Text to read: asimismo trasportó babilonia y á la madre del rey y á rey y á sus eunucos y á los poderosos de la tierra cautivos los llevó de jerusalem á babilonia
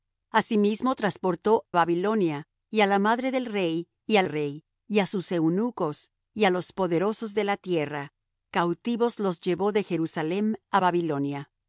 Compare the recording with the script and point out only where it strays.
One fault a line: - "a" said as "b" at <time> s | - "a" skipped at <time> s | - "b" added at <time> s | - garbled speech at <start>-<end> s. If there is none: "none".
none